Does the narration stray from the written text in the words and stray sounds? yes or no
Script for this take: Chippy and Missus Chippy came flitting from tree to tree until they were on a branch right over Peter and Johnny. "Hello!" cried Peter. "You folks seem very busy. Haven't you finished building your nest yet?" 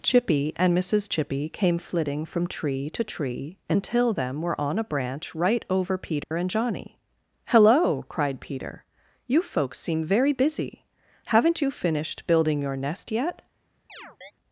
yes